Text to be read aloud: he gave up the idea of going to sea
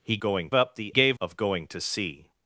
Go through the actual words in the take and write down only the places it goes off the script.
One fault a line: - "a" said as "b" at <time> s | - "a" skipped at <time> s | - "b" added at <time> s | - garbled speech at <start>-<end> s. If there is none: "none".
- "gave" said as "going" at 0.2 s
- "idea" said as "gave" at 0.9 s